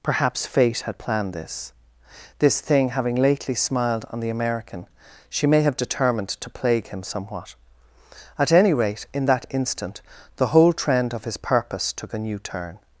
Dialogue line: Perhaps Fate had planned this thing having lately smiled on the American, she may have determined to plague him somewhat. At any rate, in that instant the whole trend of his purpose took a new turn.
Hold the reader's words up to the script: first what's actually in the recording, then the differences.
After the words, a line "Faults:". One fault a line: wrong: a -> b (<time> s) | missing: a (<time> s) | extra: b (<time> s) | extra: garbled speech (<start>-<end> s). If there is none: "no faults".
Perhaps Fate had planned this this thing having lately smiled on the American, she may have determined to plague him somewhat. At any rate, in that instant the whole trend of his purpose took a new turn.
Faults:
extra: this (2.4 s)